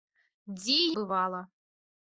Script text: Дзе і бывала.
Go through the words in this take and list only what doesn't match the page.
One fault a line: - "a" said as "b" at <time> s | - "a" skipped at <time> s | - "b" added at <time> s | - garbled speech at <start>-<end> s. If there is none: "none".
none